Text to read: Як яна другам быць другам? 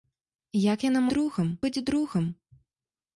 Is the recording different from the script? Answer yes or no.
no